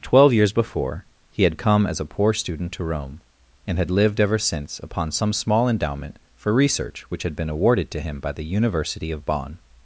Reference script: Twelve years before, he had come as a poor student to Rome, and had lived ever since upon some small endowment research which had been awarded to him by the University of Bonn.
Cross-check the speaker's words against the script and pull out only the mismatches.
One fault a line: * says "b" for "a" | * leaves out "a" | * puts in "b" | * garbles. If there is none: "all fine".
* puts in "for"